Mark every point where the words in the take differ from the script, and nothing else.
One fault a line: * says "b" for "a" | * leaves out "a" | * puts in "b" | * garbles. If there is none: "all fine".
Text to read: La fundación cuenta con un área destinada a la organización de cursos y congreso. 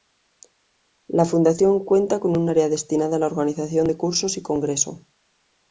all fine